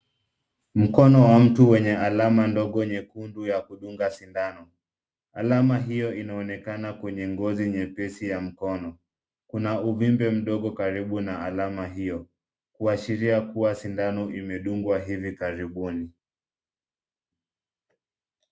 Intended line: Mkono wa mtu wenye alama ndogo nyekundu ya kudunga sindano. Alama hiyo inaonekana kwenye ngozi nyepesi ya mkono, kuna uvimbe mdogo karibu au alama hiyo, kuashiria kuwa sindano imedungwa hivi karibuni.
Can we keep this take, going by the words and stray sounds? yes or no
no